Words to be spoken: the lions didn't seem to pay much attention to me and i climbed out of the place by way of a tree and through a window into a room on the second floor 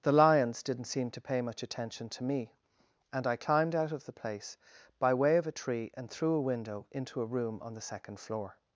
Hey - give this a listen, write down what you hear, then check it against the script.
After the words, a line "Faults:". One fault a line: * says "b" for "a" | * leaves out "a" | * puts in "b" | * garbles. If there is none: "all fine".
the lions didn't seem to pay much attention to me and i climbed out of the place by way of a tree and through a window into a room on the second floor
Faults:
all fine